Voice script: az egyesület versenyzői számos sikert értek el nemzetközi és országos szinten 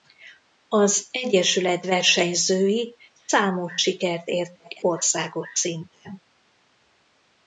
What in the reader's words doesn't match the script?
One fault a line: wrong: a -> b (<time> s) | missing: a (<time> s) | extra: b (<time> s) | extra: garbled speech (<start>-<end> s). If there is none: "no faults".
missing: el nemzetközi és (4.8 s)